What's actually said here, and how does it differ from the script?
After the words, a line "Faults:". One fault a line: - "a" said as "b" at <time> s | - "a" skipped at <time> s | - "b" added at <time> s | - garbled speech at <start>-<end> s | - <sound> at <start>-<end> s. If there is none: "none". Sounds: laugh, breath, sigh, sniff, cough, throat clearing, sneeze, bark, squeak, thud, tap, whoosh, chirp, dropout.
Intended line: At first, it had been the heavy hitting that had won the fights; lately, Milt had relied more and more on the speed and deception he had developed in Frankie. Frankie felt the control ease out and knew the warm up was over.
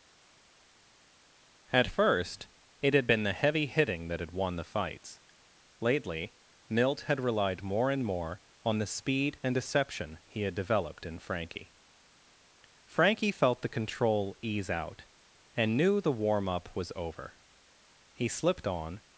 At first, it had been the heavy hitting that had won the fights; lately, Milt had relied more and more on the speed and deception he had developed in Frankie. Frankie felt the control ease out and knew the warm up was over. He slipped on
Faults:
- "He slipped on" added at 18.1 s